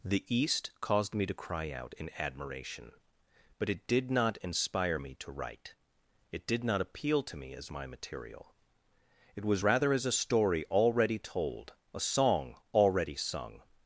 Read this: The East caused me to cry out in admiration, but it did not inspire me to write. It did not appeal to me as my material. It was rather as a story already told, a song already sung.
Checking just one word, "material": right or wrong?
right